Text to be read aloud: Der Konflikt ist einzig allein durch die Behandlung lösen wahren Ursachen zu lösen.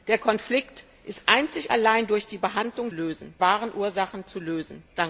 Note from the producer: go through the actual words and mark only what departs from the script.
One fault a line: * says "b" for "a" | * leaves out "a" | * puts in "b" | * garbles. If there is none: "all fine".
all fine